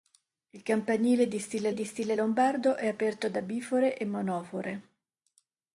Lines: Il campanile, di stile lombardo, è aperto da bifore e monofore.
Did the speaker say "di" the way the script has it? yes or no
yes